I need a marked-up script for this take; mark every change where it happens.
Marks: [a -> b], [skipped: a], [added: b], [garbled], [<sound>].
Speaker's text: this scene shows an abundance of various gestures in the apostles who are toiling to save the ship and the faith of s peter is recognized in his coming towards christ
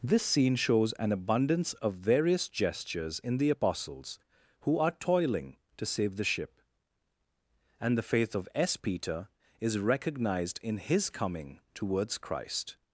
this scene shows an abundance of various gestures in the apostles who are toiling to save the ship and the faith of s peter is recognized in his coming towards christ